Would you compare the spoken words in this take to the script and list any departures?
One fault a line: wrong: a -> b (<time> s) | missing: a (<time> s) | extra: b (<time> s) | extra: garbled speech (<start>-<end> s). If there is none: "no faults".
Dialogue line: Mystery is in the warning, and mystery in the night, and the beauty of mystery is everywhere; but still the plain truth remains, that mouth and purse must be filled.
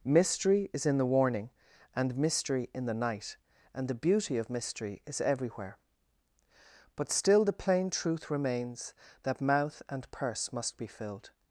no faults